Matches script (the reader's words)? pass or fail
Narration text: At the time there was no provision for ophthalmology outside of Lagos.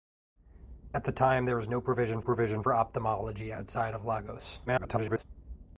fail